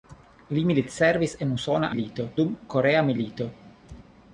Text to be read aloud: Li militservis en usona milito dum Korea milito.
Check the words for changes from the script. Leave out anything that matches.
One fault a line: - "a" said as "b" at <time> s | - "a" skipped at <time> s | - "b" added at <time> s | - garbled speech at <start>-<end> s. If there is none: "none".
none